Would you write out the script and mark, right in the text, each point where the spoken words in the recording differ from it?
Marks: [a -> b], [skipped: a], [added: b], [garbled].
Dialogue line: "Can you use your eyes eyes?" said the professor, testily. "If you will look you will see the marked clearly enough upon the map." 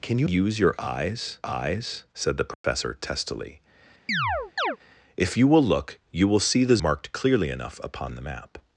"Can you use your eyes eyes?" said the professor, testily. "If you will look you will see the marked clearly enough upon the map."